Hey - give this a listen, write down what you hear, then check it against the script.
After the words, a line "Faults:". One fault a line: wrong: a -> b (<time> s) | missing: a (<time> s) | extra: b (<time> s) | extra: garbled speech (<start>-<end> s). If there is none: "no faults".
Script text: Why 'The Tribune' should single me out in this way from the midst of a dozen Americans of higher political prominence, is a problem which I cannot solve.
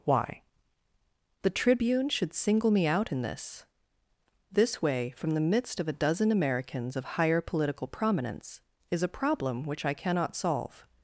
Why 'The Tribune' should single me out in this this way from the midst of a dozen Americans of higher political prominence, is a problem which I cannot solve.
Faults:
extra: this (4.5 s)